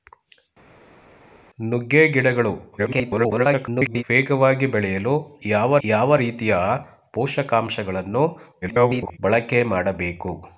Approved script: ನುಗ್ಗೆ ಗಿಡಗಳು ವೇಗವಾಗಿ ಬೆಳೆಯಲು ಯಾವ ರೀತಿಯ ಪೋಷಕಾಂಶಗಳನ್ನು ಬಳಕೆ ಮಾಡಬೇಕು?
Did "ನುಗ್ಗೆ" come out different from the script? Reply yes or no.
no